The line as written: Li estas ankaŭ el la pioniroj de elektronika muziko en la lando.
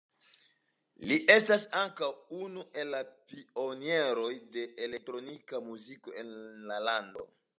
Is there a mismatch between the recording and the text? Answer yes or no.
yes